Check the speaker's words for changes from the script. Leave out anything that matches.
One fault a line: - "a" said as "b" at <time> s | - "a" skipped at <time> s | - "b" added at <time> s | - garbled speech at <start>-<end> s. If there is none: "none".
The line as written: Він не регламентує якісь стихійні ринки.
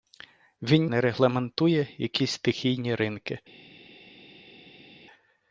none